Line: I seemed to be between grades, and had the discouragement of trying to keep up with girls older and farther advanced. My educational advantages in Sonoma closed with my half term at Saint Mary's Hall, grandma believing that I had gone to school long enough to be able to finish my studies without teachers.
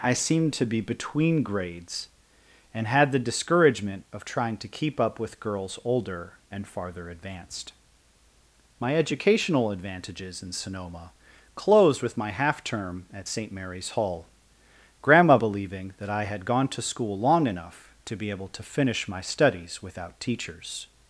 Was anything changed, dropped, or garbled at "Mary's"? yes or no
no